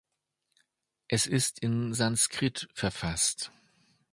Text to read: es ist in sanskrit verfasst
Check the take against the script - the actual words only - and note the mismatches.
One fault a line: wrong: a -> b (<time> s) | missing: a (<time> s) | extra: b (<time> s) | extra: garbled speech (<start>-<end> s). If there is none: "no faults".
no faults